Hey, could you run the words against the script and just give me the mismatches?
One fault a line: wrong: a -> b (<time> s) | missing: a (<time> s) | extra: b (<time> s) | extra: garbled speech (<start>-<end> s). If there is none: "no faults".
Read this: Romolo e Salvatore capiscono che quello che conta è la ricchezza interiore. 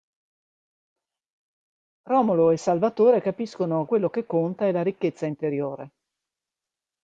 missing: che (3.9 s)